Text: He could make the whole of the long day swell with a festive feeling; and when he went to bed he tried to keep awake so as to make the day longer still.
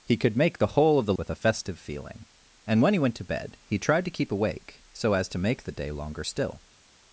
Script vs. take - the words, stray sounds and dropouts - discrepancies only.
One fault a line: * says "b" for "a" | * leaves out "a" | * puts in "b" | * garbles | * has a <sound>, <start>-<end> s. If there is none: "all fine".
* leaves out "long day swell"